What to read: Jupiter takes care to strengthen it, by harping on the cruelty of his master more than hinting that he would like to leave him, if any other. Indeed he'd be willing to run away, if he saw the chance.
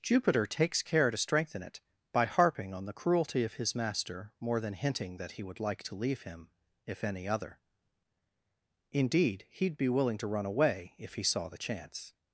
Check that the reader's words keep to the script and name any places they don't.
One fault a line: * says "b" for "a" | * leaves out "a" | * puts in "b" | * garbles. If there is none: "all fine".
all fine